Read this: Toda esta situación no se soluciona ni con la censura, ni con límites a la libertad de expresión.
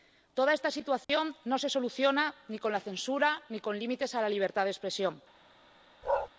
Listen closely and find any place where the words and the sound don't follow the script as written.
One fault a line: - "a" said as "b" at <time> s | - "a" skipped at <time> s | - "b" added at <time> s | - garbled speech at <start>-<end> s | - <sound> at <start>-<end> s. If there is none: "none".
- dropout at 1.0-1.1 s
- bark at 6.0-6.3 s